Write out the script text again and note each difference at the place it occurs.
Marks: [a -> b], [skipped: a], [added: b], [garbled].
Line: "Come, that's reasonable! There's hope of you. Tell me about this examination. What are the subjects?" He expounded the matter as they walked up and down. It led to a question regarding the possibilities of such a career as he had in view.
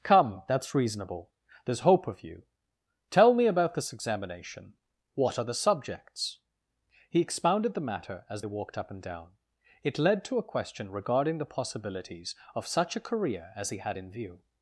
"Come, that's reasonable! There's hope of you. Tell me about this examination. What are the subjects?" He expounded the matter as they walked up and down. It led to a question regarding the possibilities of such a career as he had in view.